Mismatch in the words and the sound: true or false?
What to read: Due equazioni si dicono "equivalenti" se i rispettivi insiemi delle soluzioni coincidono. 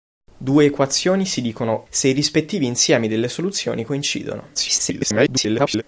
true